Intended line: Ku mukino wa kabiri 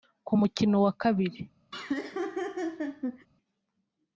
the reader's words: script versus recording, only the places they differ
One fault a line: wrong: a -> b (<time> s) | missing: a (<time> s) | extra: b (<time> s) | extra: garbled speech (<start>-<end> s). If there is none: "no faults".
no faults